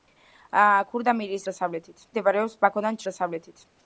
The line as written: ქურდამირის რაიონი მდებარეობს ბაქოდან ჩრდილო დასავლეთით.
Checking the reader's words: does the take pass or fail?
fail